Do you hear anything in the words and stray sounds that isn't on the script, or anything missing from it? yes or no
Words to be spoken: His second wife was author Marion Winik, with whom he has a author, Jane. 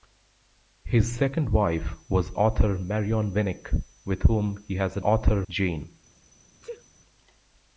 yes